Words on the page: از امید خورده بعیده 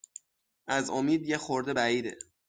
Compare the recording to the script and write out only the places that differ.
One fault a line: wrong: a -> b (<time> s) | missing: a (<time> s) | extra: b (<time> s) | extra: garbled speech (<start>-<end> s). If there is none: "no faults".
extra: یه (1.3 s)